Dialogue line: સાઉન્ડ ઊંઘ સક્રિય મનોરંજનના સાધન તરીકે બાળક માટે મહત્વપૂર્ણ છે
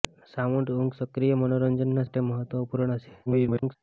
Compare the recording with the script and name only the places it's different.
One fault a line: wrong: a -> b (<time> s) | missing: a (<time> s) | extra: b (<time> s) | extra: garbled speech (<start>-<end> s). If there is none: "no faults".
missing: સાધન તરીકે બાળક (2.1 s)
extra: garbled speech (3.3-3.8 s)